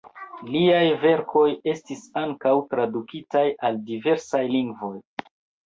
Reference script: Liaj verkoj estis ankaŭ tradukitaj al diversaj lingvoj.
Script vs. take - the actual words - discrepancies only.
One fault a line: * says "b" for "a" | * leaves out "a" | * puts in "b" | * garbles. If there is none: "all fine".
all fine